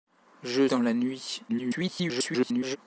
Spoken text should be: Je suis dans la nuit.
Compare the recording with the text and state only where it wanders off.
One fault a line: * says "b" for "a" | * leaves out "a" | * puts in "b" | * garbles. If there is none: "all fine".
* leaves out "suis"
* garbles